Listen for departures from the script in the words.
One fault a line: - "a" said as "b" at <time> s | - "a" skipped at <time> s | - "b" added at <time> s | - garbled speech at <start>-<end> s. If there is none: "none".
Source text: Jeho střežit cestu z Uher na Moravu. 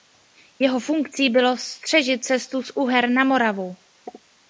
- "funkcí bylo" added at 0.8 s